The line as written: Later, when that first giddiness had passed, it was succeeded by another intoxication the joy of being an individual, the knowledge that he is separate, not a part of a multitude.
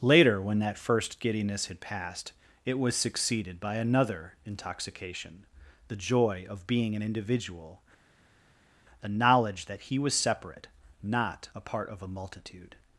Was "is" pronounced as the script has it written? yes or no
no